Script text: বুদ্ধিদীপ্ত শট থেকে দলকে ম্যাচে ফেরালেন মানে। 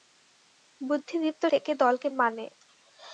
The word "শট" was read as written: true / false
false